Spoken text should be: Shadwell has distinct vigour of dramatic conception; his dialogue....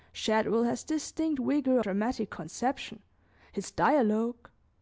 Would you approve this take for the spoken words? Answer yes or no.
no